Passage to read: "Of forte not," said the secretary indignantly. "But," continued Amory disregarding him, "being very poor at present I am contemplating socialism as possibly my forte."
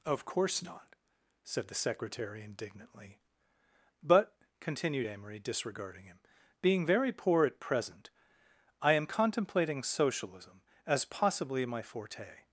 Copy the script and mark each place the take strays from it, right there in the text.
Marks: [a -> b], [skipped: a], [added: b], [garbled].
"Of [forte -> course] not," said the secretary indignantly. "But," continued Amory disregarding him, "being very poor at present I am contemplating socialism as possibly my forte."